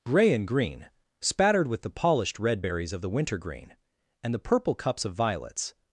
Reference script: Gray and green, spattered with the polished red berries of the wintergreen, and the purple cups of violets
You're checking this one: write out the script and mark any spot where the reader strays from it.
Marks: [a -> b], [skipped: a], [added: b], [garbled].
Gray and green, spattered with the polished red berries of the wintergreen, and the purple cups of violets